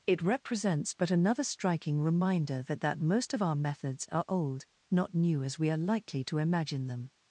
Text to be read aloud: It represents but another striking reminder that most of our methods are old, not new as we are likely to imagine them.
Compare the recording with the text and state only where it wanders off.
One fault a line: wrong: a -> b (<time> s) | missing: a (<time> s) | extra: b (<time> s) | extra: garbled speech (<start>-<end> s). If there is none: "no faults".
extra: that (2.8 s)